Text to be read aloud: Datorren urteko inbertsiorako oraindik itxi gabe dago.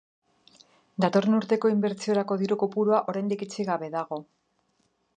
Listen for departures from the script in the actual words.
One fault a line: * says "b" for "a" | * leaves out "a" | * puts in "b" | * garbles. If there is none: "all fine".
* puts in "diru kopurua"